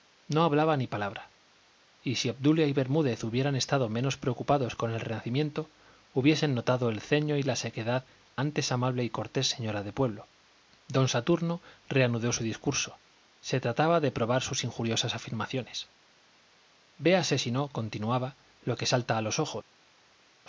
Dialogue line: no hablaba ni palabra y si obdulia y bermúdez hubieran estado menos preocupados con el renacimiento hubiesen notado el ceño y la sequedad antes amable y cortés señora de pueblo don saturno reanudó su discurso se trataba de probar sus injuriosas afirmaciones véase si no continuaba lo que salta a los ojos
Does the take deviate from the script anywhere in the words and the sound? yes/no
no